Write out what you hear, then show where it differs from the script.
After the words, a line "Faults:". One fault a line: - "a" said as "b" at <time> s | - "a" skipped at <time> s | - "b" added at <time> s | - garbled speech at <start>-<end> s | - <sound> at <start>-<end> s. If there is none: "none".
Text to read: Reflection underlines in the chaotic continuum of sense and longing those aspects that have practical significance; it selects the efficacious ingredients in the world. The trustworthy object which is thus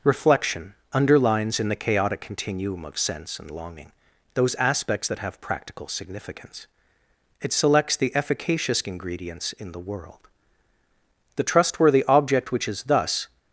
Reflection underlines in the chaotic continuum of sense and longing those aspects that have practical significance; it selects the efficacious ingredients in the world. The trustworthy object which is thus
Faults:
none